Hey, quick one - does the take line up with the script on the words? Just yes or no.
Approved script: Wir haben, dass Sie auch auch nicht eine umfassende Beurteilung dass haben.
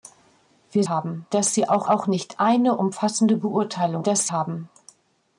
yes